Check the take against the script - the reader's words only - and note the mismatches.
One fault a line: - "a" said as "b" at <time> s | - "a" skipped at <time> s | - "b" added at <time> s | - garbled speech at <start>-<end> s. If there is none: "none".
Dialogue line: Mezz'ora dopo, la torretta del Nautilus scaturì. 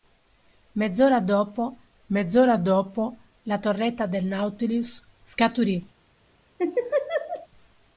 - "mezz'ora dopo" added at 2.0 s